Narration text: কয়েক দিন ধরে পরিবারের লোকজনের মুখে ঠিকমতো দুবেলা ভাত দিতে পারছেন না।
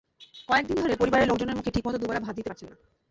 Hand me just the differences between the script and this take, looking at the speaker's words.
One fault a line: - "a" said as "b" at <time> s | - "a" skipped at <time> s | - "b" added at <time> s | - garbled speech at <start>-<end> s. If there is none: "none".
none